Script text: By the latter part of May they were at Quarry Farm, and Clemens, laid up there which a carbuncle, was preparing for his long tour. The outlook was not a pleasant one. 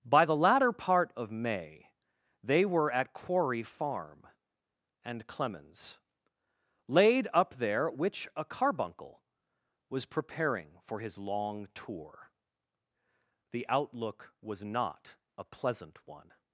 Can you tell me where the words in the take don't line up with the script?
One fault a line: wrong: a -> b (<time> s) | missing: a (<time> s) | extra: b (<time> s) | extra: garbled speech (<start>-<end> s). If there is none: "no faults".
no faults